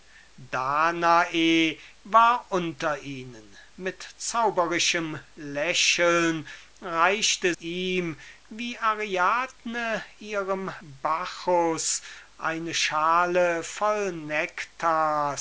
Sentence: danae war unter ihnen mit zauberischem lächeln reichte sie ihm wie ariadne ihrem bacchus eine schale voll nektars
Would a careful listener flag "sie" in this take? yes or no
yes